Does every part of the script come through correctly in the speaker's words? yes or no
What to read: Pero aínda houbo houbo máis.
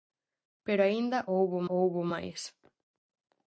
yes